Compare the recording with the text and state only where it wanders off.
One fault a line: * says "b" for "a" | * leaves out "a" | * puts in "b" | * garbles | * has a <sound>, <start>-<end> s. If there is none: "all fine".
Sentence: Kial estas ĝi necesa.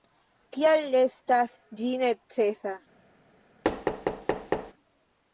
* has a thud, 3.6-4.7 s